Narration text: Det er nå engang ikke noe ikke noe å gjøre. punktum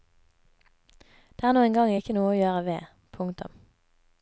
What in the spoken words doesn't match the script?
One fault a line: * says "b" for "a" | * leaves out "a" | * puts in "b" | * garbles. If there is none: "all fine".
* leaves out "ikke noe"
* puts in "ved"